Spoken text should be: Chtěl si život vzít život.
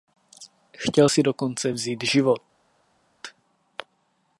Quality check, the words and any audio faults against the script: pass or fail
fail